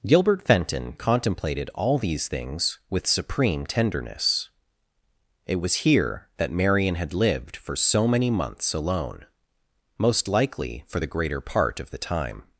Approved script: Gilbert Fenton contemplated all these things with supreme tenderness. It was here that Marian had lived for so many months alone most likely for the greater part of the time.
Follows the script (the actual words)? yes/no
yes